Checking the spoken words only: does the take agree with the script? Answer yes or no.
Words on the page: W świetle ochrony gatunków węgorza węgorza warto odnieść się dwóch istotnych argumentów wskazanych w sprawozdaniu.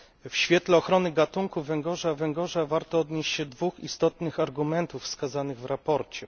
yes